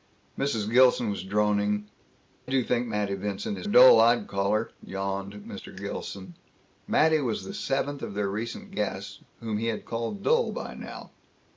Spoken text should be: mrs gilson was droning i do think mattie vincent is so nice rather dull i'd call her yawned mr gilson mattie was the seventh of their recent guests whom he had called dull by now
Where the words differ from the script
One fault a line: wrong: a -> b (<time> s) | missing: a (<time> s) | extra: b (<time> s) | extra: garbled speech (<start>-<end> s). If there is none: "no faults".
missing: i (1.9 s)
missing: so nice rather (3.7 s)